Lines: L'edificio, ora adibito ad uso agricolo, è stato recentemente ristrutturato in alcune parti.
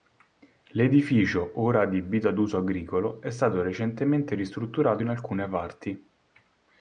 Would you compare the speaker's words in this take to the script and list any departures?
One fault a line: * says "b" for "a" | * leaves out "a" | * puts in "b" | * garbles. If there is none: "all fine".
all fine